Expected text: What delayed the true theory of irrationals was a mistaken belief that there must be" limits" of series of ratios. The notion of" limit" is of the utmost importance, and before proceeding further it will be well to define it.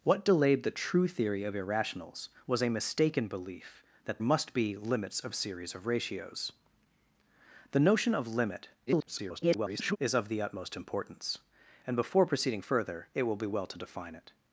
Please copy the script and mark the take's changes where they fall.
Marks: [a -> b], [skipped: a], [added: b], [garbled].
What delayed the true theory of irrationals was a mistaken belief that [skipped: there] must be" limits" of series of ratios. The notion of" limit" [garbled] is of the utmost importance, and before proceeding further it will be well to define it.